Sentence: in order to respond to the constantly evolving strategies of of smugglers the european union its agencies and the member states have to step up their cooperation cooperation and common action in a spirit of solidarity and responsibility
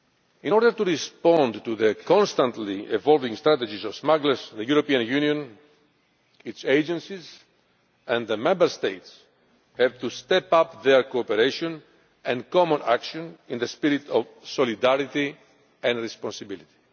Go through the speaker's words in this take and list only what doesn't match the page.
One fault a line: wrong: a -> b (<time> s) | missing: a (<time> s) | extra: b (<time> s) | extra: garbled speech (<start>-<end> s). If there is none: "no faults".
missing: of (3.9 s)
missing: cooperation (11.8 s)